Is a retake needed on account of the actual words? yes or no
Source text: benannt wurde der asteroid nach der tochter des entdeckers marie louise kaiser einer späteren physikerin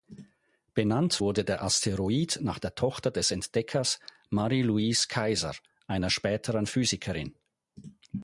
no